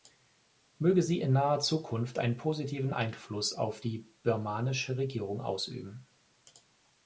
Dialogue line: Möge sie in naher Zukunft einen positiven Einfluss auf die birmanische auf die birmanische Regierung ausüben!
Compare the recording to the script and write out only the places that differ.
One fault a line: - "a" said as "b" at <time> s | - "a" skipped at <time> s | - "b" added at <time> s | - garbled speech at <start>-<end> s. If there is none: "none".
- "auf die birmanische" skipped at 5.0 s